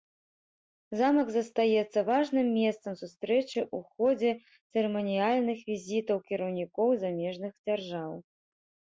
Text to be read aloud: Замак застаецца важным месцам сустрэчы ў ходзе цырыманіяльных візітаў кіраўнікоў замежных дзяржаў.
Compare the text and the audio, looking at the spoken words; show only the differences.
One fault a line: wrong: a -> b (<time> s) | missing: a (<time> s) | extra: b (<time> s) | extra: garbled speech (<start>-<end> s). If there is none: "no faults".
no faults